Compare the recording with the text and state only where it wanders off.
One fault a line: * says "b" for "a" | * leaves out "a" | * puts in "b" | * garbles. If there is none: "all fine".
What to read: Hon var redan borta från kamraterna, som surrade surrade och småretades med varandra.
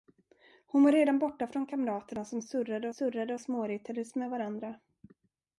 all fine